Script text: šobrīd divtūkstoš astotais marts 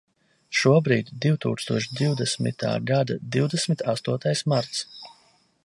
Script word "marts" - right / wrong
right